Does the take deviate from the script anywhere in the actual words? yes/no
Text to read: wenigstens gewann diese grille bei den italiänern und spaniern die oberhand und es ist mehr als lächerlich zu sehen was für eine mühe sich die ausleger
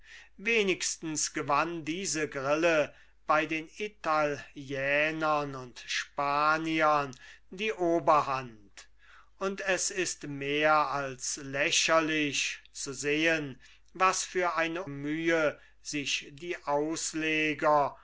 no